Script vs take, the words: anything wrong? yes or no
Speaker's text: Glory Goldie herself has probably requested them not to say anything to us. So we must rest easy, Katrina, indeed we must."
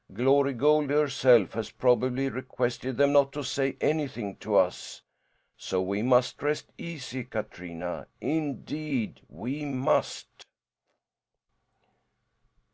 no